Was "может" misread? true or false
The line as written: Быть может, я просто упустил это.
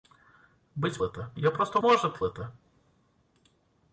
true